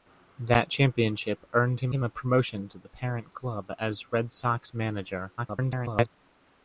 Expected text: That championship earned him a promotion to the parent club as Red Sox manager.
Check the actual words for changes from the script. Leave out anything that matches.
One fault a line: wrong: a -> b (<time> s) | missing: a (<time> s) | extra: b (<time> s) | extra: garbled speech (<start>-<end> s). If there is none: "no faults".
extra: him (1.9 s)
extra: garbled speech (5.4-6.1 s)